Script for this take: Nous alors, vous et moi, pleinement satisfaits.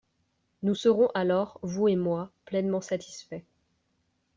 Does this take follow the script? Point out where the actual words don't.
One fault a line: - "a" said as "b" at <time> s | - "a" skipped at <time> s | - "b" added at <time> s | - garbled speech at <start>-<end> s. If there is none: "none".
- "serons" added at 0.7 s